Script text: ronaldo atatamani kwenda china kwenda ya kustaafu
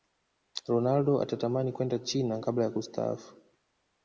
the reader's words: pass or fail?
fail